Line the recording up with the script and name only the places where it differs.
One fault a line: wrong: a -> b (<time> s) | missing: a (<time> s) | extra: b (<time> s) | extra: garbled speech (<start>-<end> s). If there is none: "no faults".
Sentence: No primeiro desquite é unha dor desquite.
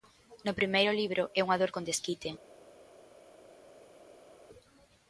wrong: desquite -> libro (1.0 s)
extra: con (1.7 s)